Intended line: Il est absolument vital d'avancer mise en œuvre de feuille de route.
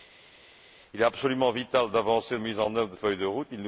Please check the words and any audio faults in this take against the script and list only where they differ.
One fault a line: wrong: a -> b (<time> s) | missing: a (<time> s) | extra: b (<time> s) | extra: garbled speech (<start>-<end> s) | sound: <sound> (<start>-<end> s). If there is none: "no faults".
no faults